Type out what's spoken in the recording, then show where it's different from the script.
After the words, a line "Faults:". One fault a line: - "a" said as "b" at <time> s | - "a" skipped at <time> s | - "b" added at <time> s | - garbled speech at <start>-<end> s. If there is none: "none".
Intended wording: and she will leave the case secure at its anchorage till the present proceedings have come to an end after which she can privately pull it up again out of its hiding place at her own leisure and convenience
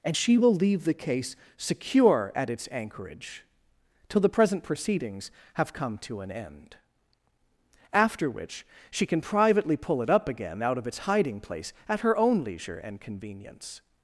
and she will leave the case secure at its anchorage till the present proceedings have come to an end after which she can privately pull it up again out of its hiding place at her own leisure and convenience
Faults:
none